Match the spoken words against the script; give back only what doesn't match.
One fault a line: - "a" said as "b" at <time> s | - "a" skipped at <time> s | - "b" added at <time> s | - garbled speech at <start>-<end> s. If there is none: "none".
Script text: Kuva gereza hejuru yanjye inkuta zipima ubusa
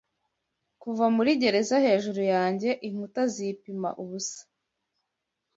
- "muri" added at 1.1 s